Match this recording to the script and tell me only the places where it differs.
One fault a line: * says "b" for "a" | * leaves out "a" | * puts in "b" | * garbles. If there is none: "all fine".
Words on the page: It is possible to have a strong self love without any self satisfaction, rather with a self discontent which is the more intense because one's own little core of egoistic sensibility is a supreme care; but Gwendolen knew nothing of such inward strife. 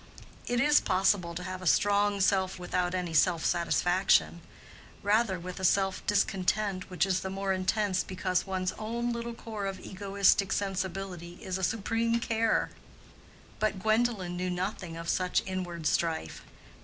* leaves out "love"